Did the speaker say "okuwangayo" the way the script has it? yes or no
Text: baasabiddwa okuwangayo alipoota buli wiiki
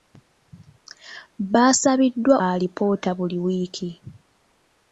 no